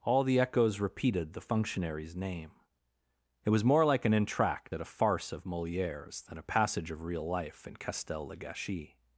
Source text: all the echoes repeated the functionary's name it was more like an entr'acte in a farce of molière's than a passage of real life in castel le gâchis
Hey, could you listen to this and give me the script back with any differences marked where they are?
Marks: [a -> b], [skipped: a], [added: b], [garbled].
all the echoes repeated the functionary's name it was more like an entr'acte [in -> at] a farce of molière's than a passage of real life in castel le gâchis